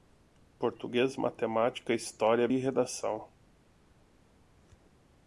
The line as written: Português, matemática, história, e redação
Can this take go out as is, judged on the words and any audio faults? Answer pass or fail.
pass